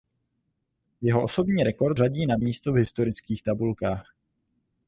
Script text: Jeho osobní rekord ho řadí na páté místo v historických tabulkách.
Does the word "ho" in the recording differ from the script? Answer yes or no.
yes